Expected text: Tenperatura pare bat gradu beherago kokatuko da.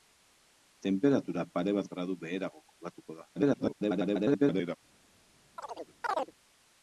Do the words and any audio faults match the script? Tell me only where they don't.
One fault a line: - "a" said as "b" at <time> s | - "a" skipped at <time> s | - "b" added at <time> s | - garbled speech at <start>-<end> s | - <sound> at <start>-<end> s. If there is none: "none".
- garbled speech at 3.4-4.8 s
- chirp at 5.6-6.3 s